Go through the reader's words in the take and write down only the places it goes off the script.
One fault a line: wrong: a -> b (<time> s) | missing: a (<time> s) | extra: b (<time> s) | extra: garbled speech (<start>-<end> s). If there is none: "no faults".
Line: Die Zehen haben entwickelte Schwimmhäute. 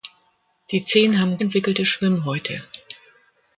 no faults